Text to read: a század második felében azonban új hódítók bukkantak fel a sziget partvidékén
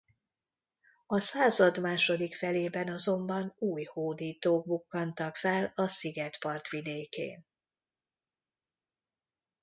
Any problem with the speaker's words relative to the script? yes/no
no